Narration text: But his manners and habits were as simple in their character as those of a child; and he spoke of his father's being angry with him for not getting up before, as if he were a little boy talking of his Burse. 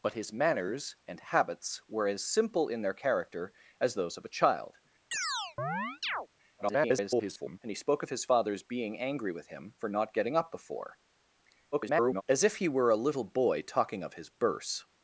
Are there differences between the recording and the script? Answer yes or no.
yes